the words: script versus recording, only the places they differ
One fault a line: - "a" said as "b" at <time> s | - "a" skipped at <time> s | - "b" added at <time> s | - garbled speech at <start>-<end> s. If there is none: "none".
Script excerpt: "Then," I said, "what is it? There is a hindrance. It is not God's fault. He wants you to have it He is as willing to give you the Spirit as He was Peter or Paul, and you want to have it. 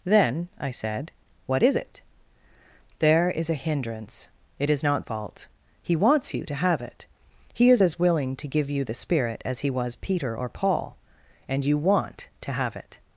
- "God's" skipped at 5.0 s